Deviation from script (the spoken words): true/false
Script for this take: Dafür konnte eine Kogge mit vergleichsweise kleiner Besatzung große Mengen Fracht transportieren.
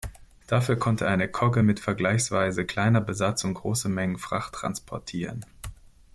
false